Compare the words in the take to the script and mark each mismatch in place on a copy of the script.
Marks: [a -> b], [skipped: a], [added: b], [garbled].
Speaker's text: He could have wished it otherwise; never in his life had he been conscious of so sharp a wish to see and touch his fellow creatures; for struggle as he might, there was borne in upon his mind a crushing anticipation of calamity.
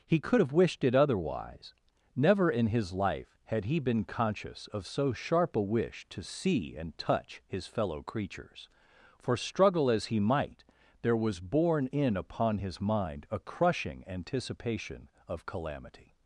He could have wished it otherwise; never in his life had he been conscious of so sharp a wish to see and touch his fellow creatures; for struggle as he might, there was borne in upon his mind a crushing anticipation of calamity.